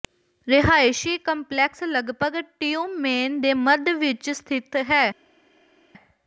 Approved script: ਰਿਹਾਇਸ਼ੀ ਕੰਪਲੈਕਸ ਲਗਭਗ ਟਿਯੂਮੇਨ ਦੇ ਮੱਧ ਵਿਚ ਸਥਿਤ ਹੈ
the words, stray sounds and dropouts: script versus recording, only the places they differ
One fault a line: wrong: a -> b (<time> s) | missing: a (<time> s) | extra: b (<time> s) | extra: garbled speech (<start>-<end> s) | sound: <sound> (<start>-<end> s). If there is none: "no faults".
no faults